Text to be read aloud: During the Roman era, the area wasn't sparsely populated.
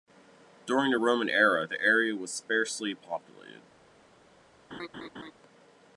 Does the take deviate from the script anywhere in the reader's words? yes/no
yes